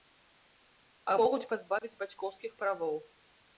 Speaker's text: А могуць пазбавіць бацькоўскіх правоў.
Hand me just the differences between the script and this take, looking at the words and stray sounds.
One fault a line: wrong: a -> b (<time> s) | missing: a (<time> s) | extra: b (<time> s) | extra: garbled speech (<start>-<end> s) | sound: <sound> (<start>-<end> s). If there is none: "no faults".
sound: dropout (1.8-1.8 s)